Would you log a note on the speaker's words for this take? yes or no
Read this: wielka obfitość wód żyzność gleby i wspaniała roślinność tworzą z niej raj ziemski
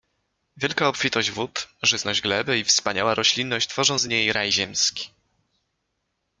no